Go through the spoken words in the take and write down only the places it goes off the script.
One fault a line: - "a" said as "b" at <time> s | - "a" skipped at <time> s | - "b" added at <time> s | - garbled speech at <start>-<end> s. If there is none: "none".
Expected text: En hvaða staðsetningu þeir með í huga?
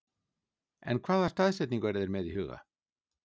- "eru" added at 1.9 s